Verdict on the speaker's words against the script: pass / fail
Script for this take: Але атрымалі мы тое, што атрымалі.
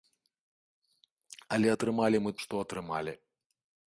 fail